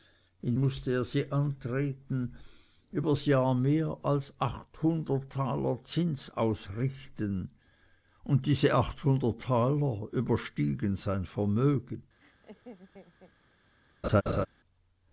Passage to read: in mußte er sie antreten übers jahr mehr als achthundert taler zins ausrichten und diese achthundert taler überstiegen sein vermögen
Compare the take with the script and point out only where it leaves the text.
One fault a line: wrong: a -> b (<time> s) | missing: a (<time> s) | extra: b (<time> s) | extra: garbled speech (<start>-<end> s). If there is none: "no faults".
no faults